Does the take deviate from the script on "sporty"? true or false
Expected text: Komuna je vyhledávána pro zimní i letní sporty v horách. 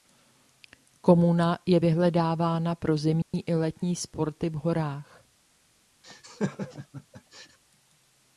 false